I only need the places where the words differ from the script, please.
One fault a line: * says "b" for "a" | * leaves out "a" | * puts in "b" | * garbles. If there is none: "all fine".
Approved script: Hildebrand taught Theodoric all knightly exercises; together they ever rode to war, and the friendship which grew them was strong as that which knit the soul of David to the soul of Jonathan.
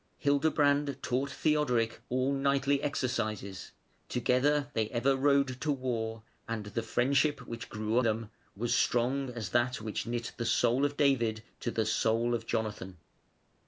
all fine